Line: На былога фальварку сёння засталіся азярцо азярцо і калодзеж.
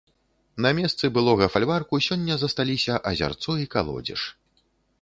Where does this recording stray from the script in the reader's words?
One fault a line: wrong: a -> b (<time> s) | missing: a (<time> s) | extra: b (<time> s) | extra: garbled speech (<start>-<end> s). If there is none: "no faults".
extra: месцы (0.8 s)
missing: азярцо (3.6 s)